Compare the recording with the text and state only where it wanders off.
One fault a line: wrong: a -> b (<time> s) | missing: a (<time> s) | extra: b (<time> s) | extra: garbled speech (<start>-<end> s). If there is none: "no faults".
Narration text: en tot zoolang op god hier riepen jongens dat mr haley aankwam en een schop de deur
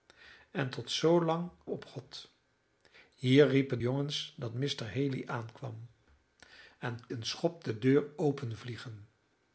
no faults